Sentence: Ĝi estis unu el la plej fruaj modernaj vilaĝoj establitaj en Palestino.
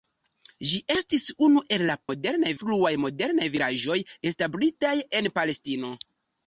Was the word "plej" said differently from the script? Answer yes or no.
yes